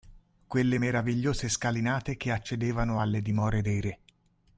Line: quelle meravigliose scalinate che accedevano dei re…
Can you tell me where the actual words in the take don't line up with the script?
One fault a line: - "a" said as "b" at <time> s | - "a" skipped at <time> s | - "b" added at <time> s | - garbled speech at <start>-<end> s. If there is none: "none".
- "alle dimore" added at 3.0 s